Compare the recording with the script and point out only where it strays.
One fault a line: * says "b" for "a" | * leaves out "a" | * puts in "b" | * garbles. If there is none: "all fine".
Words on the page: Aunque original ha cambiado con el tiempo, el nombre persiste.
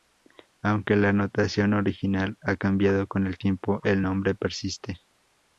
* puts in "la notación"